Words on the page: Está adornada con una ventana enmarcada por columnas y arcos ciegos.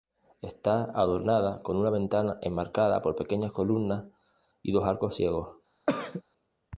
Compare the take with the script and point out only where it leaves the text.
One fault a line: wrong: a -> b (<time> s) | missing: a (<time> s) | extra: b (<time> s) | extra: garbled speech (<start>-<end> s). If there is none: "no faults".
extra: pequeñas (3.1 s)
extra: dos (4.7 s)